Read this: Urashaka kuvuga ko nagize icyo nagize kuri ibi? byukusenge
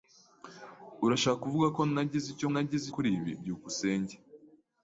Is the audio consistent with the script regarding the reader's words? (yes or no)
yes